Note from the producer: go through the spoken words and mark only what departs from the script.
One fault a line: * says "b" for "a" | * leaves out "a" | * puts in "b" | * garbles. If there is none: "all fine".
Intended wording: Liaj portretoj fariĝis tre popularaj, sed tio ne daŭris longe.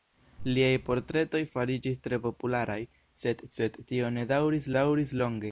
* puts in "sed"
* puts in "daŭris"